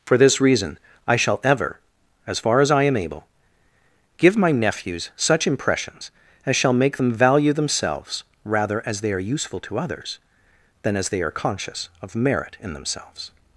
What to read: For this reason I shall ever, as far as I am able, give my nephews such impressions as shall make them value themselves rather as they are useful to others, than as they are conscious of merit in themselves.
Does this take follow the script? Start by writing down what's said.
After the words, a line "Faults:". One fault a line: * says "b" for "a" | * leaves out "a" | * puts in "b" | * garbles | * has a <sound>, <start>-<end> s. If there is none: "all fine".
For this reason I shall ever, as far as I am able, give my nephews such impressions as shall make them value themselves rather as they are useful to others, than as they are conscious of merit in themselves.
Faults:
all fine